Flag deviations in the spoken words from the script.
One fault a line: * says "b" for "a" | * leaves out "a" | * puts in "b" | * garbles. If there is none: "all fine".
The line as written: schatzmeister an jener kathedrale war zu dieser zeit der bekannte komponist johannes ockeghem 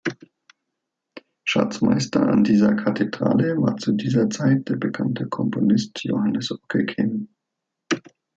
* says "dieser" for "jener"